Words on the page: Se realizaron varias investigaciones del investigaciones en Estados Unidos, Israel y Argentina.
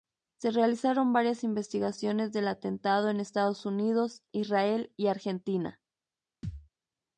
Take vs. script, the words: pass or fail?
fail